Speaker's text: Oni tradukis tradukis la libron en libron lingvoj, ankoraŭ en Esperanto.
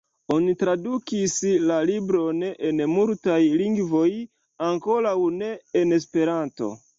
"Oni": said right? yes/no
yes